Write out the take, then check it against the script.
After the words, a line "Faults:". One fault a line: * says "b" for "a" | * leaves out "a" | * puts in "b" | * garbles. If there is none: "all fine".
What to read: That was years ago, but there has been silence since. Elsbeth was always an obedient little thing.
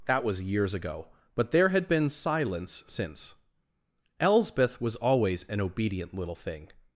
That was years ago, but there had been silence since. Elsbeth was always an obedient little thing.
Faults:
* says "had" for "has"